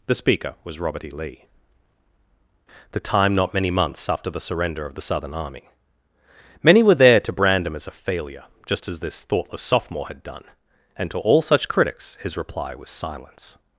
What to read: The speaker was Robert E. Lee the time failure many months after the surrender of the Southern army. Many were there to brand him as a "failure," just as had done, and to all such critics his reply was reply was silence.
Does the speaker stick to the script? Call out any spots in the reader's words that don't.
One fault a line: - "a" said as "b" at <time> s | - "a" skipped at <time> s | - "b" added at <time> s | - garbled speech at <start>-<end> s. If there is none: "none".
- "failure" said as "not" at 3.3 s
- "this thoughtless sophomore" added at 9.0 s
- "reply was" skipped at 12.9 s